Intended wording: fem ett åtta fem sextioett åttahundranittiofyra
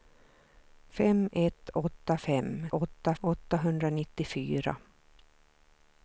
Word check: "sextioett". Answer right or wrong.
wrong